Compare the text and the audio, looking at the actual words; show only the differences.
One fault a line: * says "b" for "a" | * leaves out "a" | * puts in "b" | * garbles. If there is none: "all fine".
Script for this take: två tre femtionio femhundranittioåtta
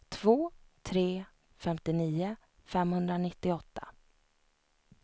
all fine